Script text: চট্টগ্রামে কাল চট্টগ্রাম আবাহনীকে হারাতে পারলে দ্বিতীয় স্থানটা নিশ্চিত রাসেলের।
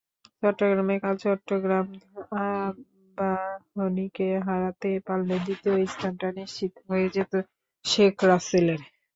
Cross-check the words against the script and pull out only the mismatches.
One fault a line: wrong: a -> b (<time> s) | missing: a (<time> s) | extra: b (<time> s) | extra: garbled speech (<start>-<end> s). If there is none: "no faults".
extra: হয়ে যেত শেখ (6.9 s)